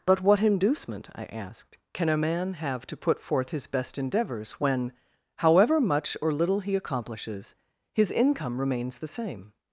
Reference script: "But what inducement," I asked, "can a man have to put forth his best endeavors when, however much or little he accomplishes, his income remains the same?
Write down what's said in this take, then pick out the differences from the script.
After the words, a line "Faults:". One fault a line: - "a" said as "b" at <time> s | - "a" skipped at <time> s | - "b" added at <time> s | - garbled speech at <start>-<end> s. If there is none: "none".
"But what inducement," I asked, "can a man have to put forth his best endeavors when, however much or little he accomplishes, his income remains the same?
Faults:
none